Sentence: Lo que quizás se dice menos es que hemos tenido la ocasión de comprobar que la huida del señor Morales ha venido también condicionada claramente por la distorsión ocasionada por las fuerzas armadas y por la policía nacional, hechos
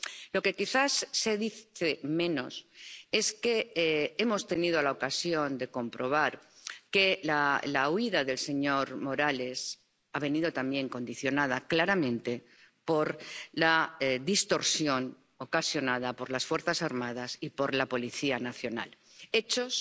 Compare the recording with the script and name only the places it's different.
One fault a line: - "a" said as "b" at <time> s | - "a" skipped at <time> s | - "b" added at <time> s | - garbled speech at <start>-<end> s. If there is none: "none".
none